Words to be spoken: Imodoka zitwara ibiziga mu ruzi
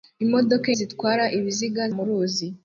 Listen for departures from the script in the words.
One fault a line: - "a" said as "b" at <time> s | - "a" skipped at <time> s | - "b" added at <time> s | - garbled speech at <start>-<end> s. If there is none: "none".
none